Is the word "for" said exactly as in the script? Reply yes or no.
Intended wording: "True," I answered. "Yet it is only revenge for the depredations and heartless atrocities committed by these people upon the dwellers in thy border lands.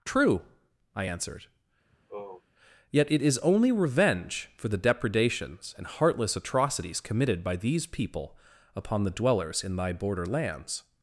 yes